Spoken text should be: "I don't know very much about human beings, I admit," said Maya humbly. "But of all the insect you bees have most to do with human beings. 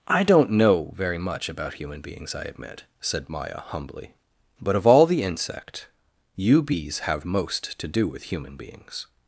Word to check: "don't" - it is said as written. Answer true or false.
true